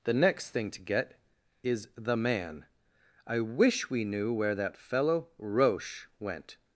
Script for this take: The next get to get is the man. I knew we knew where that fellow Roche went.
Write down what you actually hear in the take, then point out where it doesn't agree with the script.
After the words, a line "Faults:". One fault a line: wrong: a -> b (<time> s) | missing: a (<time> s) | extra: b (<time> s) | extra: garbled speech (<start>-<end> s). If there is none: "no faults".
The next thing to get is the man. I wish we knew where that fellow Roche went.
Faults:
wrong: get -> thing (0.5 s)
wrong: knew -> wish (3.4 s)